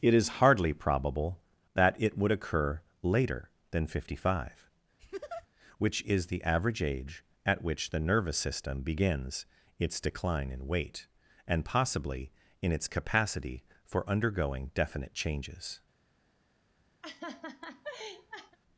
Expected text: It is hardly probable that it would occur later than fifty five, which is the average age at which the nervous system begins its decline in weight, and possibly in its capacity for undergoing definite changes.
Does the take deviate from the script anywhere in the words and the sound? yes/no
yes